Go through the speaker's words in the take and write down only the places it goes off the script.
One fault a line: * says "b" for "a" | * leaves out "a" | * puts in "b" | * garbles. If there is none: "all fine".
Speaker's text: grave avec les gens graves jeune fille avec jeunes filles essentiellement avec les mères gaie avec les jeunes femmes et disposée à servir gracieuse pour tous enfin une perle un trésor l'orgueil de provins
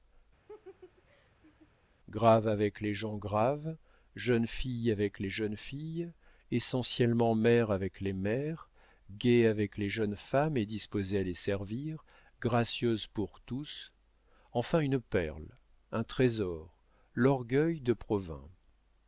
* puts in "les"
* puts in "mère"
* puts in "les"